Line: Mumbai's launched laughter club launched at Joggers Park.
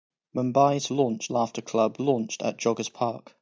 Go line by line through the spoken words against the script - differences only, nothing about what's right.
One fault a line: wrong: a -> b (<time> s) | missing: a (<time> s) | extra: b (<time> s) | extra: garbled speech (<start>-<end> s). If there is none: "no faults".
no faults